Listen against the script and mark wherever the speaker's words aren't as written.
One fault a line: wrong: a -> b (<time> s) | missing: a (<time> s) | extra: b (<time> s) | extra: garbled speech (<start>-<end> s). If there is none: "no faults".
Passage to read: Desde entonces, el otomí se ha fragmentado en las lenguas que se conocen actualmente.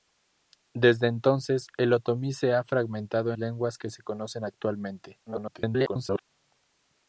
missing: en las (3.3 s)
extra: garbled speech (5.3-6.2 s)